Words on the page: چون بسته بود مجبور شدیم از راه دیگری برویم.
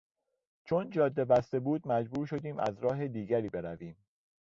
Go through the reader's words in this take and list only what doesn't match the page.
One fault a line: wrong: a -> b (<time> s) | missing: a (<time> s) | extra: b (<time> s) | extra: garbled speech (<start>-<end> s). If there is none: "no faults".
extra: جاده (0.9 s)